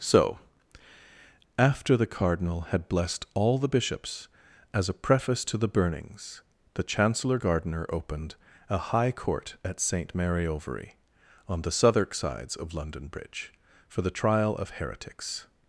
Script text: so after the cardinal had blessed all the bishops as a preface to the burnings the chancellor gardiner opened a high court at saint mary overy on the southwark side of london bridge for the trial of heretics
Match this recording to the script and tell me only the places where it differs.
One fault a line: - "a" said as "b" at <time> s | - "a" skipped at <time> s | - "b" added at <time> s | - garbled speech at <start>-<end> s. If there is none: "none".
- "side" said as "sides" at 12.1 s